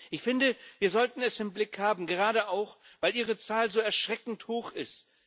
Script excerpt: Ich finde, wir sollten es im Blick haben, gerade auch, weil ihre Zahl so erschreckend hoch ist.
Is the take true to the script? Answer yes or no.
yes